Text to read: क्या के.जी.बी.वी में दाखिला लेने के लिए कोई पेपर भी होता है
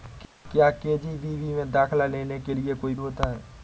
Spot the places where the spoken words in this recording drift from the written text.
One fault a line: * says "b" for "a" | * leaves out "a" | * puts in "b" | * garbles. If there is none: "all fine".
* leaves out "पेपर भी"